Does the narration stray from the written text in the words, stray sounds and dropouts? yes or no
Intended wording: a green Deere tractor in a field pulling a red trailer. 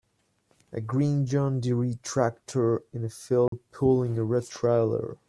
yes